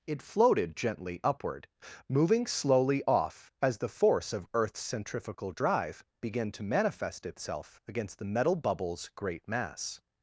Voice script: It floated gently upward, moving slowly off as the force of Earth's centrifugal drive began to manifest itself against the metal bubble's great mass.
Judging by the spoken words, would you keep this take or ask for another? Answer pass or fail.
pass